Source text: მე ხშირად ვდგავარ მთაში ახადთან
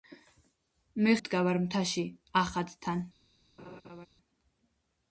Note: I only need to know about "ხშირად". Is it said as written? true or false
false